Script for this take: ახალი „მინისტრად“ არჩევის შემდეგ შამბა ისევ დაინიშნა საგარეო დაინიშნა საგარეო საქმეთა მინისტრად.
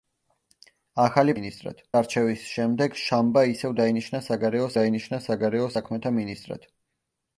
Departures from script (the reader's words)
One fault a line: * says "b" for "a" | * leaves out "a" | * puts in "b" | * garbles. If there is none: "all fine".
all fine